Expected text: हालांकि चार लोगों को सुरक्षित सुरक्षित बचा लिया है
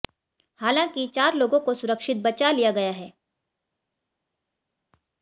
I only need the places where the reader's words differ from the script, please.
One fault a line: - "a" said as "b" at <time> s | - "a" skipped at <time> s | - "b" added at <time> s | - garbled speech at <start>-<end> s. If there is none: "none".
- "सुरक्षित" skipped at 2.2 s
- "गया" added at 2.7 s